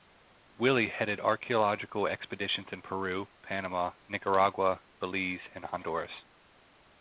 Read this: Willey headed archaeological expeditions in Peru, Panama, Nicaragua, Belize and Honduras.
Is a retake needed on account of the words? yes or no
no